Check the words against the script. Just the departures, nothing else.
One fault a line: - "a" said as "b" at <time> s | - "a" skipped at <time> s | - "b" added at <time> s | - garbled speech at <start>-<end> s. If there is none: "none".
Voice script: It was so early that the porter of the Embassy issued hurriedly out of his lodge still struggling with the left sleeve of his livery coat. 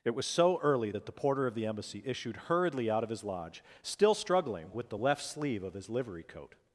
none